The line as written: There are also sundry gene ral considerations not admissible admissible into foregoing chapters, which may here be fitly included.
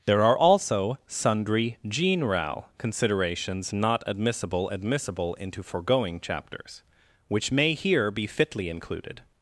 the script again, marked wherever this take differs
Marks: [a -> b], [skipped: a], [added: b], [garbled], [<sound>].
There are also sundry gene ral considerations not admissible admissible into foregoing chapters, which may here be fitly included.